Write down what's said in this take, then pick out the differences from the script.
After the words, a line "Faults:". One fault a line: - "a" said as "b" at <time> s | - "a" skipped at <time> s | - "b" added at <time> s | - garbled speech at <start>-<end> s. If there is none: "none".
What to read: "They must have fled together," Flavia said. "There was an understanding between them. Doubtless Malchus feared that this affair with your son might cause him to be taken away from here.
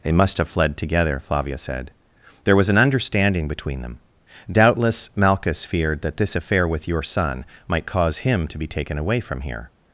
"They must have fled together," Flavia said. "There was an understanding between them. Doubtless Malchus feared that this affair with your son might cause him to be taken away from here.
Faults:
none